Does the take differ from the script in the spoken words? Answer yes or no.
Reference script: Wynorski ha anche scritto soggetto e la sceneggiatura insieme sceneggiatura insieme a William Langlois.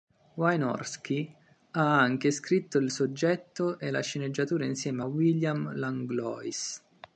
yes